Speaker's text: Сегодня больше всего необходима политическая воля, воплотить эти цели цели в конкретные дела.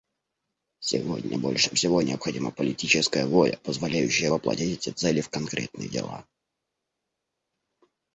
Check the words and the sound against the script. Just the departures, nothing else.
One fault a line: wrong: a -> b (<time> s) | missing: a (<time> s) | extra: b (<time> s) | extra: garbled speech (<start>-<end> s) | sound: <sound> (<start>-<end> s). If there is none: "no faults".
extra: позволяющая (3.6 s)
missing: цели (5.2 s)